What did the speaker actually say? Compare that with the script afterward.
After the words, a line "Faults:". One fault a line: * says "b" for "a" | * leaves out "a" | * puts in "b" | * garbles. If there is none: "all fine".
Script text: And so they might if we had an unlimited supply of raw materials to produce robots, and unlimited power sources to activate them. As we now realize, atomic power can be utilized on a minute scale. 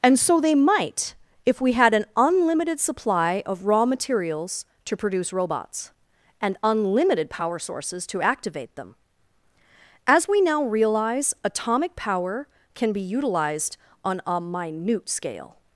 And so they might if we had an unlimited supply of raw materials to produce robots, and unlimited power sources to activate them. As we now realize, atomic power can be utilized on a minute scale.
Faults:
all fine